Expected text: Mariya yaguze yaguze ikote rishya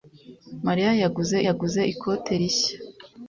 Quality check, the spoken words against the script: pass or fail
pass